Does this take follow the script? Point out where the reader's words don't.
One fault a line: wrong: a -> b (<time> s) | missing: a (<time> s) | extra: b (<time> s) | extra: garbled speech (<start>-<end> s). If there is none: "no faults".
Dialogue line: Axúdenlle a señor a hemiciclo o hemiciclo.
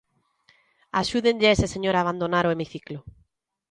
extra: ese (1.6 s)
wrong: hemiciclo -> abandonar (2.0 s)